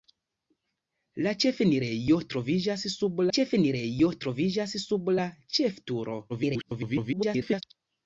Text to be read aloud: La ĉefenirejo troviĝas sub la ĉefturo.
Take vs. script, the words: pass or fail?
fail